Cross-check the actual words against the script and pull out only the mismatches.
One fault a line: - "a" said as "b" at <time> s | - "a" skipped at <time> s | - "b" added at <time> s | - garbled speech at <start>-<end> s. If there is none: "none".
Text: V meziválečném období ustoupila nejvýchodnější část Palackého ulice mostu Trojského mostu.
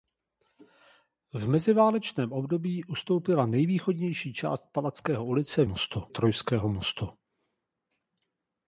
none